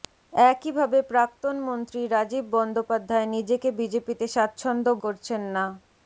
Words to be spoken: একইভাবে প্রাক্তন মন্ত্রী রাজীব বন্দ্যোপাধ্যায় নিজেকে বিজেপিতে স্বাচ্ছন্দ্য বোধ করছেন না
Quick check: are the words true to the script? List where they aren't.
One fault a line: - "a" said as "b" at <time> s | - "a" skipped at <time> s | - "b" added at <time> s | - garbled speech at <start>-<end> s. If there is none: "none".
- "বোধ" skipped at 4.9 s